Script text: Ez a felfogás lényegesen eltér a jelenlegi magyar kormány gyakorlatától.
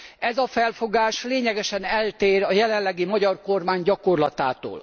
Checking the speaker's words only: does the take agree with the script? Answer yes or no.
yes